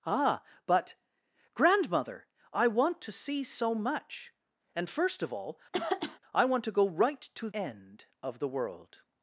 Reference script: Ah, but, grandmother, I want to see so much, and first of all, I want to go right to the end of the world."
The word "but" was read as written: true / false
true